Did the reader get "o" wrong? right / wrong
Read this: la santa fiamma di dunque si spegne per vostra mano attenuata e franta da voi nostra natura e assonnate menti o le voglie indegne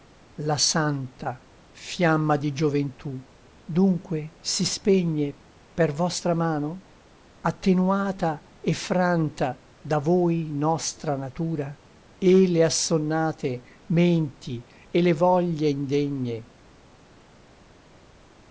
wrong